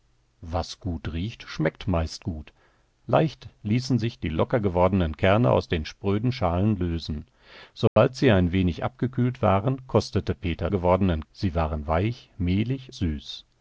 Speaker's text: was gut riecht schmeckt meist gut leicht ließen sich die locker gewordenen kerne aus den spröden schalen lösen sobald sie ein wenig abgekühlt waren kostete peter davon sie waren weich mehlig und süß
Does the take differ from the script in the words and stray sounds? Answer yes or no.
yes